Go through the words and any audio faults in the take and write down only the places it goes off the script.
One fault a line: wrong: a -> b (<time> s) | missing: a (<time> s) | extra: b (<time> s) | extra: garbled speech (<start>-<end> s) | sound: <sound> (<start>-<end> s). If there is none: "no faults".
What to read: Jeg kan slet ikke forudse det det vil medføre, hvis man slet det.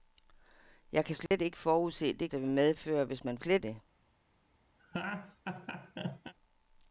sound: dropout (1.3-1.3 s)
sound: laugh (4.8-6.3 s)